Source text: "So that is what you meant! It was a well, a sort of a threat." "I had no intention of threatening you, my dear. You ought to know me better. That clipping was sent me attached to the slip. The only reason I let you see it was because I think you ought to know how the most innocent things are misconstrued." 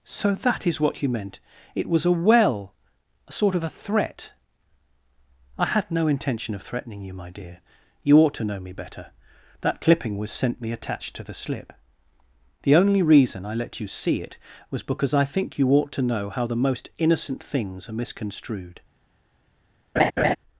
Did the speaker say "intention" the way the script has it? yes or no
yes